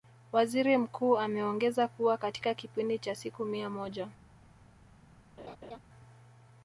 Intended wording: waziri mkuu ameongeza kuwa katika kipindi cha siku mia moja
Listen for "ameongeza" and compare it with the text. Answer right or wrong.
right